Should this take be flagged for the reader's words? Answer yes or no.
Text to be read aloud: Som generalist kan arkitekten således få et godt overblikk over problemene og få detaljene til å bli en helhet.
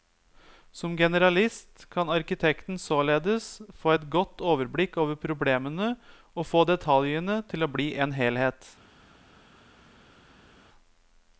no